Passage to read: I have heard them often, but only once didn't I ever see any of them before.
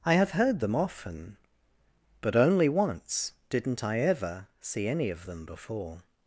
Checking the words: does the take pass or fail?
pass